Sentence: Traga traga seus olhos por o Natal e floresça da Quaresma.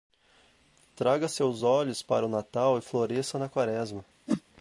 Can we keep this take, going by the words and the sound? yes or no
no